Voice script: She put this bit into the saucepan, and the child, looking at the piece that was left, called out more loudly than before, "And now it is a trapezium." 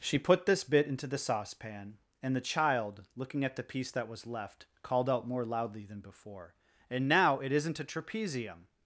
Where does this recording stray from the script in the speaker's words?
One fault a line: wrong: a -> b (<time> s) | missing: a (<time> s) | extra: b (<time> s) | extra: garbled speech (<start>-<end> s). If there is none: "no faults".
wrong: is -> isn't (7.5 s)